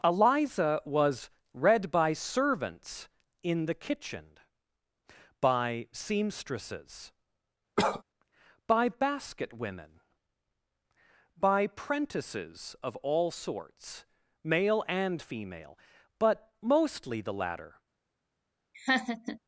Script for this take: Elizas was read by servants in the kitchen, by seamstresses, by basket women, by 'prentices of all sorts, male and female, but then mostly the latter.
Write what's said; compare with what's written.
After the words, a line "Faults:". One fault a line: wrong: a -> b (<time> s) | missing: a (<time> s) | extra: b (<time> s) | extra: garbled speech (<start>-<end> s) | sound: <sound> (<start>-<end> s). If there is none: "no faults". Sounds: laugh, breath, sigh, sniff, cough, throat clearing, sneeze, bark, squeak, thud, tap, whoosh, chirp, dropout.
Eliza was read by servants in the kitchen, by seamstresses, by basket women, by 'prentices of all sorts, male and female, but mostly the latter.
Faults:
wrong: Elizas -> Eliza (0.0 s)
sound: cough (7.8-8.0 s)
missing: then (16.5 s)
sound: laugh (18.7-19.4 s)